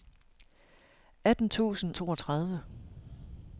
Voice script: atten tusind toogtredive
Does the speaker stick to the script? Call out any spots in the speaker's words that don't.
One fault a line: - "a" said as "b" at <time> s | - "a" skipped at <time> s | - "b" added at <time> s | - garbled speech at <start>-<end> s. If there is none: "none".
none